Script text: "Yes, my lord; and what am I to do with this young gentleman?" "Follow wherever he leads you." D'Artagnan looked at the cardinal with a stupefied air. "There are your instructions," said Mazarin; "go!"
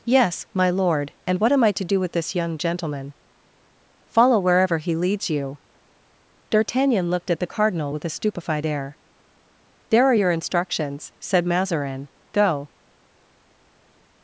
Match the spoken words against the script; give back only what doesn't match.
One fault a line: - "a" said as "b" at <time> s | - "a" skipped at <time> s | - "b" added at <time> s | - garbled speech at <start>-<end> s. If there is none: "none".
none